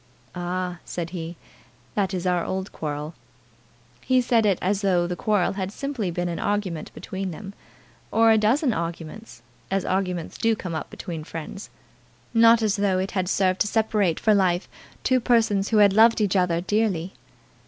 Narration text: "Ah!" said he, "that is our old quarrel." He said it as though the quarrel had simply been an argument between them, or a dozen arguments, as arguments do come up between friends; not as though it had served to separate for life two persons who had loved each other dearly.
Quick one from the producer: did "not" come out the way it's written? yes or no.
yes